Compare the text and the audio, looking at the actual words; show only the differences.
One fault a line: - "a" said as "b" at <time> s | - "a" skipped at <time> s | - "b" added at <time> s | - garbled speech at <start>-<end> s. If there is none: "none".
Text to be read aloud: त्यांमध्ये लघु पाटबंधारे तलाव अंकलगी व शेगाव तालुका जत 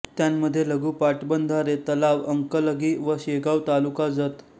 none